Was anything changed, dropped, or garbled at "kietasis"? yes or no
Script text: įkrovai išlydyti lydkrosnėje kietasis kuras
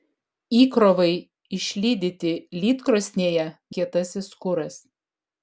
no